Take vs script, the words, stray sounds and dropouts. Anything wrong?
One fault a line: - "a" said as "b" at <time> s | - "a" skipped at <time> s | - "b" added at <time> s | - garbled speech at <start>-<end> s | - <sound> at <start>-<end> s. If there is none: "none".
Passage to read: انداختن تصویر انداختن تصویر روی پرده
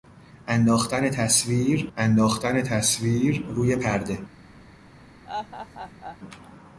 - laugh at 5.3-6.2 s